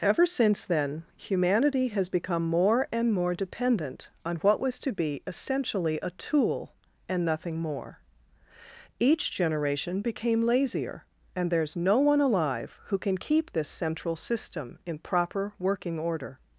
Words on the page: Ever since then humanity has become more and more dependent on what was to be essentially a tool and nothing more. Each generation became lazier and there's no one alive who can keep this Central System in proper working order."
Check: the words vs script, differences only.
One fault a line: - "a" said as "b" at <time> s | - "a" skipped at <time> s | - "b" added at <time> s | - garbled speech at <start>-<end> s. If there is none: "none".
none